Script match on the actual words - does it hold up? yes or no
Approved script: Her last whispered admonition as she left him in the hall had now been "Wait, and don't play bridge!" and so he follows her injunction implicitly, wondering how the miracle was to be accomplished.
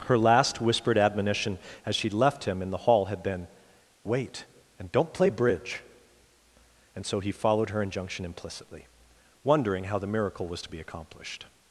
no